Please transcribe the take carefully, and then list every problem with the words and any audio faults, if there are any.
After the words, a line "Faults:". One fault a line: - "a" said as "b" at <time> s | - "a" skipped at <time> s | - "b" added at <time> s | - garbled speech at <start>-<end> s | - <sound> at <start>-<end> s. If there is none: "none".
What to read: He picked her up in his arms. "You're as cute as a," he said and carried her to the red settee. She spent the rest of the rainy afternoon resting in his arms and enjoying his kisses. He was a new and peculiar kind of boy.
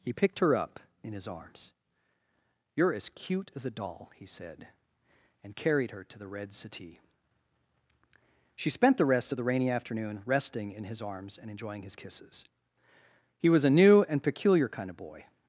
He picked her up in his arms. "You're as cute as a doll," he said and carried her to the red settee. She spent the rest of the rainy afternoon resting in his arms and enjoying his kisses. He was a new and peculiar kind of boy.
Faults:
- "doll" added at 3.7 s